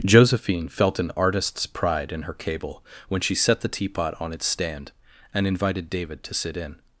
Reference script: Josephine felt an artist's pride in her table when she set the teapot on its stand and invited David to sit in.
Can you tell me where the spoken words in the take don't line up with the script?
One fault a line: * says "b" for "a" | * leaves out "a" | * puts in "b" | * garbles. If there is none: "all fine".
* says "cable" for "table"